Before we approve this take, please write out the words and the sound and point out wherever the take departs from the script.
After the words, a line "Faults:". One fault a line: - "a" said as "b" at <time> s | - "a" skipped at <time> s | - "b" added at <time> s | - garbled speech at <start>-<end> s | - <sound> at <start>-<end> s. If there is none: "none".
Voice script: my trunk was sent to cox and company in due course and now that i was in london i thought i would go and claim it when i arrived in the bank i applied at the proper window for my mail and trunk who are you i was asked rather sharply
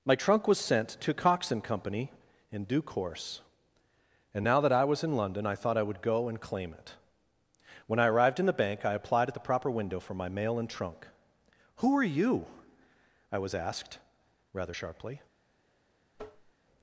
my trunk was sent to cox and company in due course and now that i was in london i thought i would go and claim it when i arrived in the bank i applied at the proper window for my mail and trunk who are you i was asked rather sharply
Faults:
- tap at 16.1-16.5 s